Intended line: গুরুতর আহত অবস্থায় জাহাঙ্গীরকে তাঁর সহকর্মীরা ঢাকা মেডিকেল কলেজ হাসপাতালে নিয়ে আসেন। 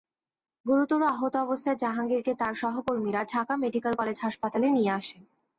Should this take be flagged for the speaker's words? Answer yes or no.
no